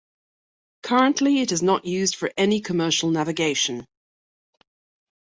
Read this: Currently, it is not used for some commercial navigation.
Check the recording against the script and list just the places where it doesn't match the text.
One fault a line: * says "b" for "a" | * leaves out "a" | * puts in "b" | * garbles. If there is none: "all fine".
* says "any" for "some"